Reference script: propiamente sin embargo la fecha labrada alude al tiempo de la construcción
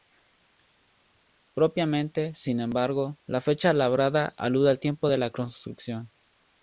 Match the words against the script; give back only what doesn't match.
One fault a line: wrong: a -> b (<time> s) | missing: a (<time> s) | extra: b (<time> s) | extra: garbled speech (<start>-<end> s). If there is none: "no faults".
no faults